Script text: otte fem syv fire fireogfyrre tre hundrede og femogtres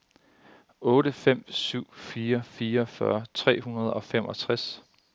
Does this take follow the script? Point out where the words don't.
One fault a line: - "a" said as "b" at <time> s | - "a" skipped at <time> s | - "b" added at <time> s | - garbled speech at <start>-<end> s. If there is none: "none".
none